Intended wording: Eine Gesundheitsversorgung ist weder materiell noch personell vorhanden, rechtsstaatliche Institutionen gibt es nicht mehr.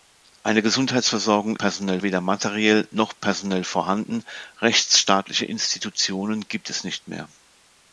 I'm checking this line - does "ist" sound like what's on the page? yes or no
no